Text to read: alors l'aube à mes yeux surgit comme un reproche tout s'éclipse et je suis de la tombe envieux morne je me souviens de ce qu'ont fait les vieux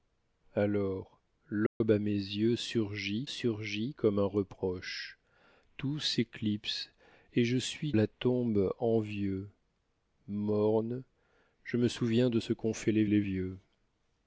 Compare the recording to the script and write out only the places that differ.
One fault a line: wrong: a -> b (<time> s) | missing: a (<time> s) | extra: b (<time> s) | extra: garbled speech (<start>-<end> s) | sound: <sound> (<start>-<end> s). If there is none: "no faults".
sound: dropout (1.7-1.8 s)
extra: surgit (3.2 s)
missing: de (7.9 s)
extra: les (13.1 s)